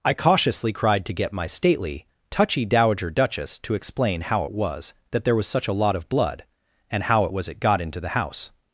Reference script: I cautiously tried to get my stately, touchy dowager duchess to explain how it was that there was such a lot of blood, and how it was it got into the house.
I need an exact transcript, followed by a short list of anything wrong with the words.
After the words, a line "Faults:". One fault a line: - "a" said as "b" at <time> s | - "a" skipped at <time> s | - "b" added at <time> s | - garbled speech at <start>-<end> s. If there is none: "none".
I cautiously cried to get my stately, touchy dowager duchess to explain how it was that there was such a lot of blood, and how it was it got into the house.
Faults:
- "tried" said as "cried" at 0.7 s